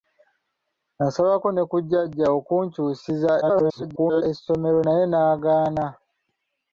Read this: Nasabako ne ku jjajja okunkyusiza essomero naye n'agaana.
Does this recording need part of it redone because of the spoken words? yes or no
yes